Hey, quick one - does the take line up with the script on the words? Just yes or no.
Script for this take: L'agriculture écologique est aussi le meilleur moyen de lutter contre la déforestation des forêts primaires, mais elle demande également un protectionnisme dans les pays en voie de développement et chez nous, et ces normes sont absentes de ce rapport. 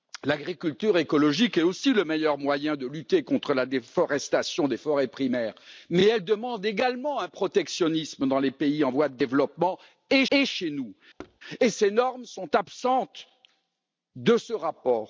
no